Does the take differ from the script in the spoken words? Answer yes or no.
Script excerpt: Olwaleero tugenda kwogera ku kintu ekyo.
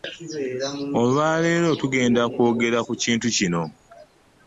yes